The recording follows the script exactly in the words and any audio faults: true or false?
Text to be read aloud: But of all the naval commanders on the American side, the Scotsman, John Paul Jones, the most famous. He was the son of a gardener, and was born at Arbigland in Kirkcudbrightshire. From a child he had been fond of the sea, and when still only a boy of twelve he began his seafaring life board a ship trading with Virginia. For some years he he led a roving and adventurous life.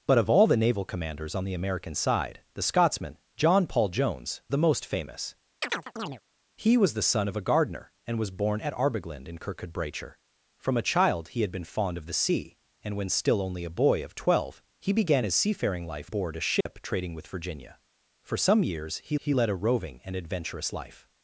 false